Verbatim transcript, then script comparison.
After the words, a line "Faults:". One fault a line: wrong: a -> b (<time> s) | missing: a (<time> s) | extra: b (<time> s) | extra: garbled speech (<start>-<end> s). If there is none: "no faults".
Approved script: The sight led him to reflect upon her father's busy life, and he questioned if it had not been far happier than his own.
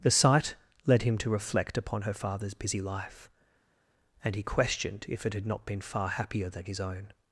The sight led him to reflect upon her father's busy life, and he questioned if it had not been far happier than his own.
Faults:
no faults